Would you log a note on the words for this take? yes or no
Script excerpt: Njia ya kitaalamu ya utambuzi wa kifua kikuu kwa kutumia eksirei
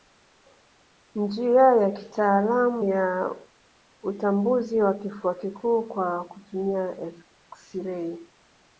no